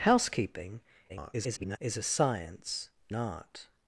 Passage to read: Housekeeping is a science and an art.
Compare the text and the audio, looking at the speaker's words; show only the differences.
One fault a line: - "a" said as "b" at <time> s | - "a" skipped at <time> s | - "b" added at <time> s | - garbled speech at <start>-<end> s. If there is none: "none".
- garbled speech at 1.1-1.8 s
- "and an" skipped at 2.9 s